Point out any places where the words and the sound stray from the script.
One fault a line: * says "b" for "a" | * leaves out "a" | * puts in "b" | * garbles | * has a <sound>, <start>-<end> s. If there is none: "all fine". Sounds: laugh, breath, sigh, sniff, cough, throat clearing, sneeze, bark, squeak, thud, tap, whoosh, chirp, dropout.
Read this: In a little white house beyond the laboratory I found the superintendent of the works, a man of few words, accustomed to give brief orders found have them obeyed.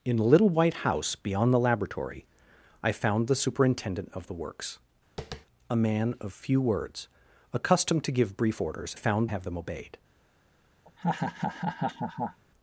* has a tap, 5.2-5.5 s
* has a laugh, 10.8-12.4 s